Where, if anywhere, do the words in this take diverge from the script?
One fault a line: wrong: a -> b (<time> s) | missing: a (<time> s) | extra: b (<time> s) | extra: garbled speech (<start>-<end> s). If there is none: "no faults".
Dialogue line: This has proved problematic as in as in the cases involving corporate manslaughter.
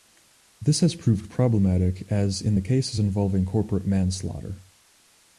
missing: as in (2.6 s)